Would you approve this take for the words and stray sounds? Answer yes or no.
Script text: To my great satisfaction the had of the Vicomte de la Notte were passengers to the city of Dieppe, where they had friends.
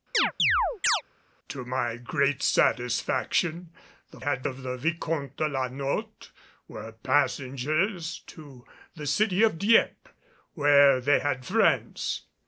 no